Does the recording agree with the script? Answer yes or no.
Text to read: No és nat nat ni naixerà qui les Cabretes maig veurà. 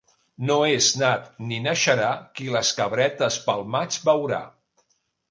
no